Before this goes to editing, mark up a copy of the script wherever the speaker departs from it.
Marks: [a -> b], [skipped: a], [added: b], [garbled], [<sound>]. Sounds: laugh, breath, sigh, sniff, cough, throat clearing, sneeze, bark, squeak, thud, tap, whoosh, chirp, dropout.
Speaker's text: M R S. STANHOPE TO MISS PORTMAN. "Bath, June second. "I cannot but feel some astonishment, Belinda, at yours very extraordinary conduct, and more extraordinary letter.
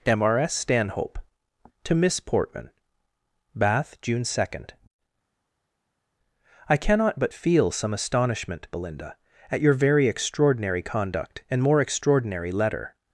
M R S. STANHOPE TO MISS PORTMAN. "Bath, June second. "I cannot but feel some astonishment, Belinda, at [yours -> your] very extraordinary conduct, and more extraordinary letter.